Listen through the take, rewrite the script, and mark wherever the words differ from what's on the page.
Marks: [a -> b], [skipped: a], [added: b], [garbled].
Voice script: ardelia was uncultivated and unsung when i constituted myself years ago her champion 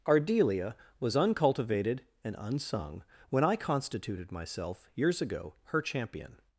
ardelia was uncultivated and unsung when i constituted myself years ago her champion